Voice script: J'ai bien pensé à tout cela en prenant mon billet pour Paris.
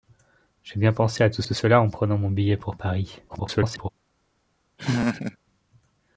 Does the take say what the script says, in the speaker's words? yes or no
no